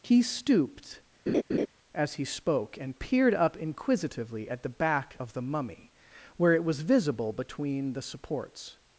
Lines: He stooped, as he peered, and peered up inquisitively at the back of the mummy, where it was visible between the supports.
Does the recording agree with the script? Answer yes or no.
no